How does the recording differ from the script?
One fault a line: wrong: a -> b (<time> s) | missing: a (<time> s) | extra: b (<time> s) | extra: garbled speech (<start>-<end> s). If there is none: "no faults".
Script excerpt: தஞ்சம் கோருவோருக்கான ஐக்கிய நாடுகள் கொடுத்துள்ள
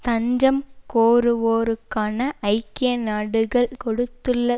no faults